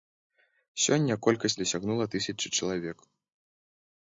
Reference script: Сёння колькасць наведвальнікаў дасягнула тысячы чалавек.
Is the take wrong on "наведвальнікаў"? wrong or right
wrong